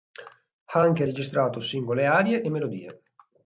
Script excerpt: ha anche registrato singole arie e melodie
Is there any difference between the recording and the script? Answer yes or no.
no